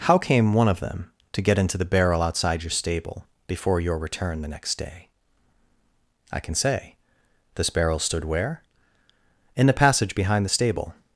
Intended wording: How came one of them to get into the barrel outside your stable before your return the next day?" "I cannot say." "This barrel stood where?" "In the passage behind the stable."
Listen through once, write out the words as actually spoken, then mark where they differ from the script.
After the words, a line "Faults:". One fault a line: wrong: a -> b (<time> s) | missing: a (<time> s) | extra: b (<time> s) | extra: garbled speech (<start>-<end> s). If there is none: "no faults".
How came one of them to get into the barrel outside your stable before your return the next day?" "I can say." "This barrel stood where?" "In the passage behind the stable."
Faults:
wrong: cannot -> can (6.4 s)